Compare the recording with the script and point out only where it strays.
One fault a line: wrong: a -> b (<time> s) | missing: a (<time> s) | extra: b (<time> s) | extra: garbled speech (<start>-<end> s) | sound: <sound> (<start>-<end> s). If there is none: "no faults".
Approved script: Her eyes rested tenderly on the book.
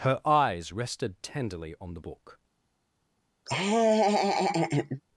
sound: laugh (3.5-5.0 s)